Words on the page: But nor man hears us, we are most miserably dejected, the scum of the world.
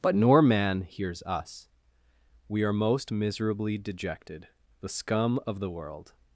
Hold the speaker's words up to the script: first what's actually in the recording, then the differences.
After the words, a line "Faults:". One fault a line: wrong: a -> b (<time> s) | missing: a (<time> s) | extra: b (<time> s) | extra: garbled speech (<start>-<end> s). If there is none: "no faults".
But nor man hears us, we are most miserably dejected, the scum of the world.
Faults:
no faults